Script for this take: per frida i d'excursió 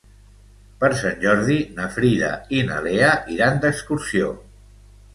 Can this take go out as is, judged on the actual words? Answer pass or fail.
fail